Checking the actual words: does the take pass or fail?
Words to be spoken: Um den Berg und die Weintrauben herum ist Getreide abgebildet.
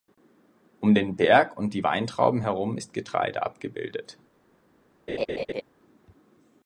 pass